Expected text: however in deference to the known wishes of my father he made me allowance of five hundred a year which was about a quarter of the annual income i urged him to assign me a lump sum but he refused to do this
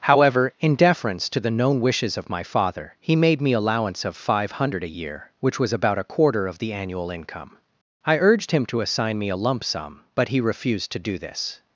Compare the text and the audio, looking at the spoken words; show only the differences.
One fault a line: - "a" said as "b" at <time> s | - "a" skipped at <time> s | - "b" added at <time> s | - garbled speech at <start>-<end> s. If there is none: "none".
none